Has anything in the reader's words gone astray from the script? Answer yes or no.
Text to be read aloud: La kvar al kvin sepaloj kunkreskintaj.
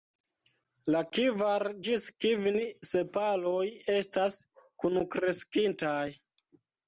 yes